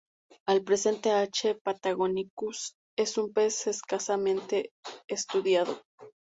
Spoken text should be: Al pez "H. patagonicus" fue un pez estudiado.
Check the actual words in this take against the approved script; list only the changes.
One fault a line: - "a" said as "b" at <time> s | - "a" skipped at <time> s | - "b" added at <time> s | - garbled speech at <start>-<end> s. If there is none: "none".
- "pez" said as "presente" at 0.6 s
- "fue" said as "es" at 3.0 s
- "escasamente" added at 3.7 s